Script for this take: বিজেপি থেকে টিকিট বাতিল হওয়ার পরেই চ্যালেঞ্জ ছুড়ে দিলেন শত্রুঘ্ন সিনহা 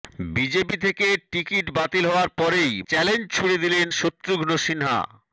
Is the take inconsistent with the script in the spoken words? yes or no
no